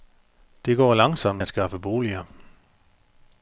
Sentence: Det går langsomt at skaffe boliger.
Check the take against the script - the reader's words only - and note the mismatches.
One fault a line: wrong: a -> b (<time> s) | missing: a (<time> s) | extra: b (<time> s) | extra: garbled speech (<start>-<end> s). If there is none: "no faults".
no faults